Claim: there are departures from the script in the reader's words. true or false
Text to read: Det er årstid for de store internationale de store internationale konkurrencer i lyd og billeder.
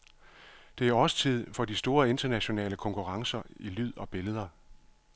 true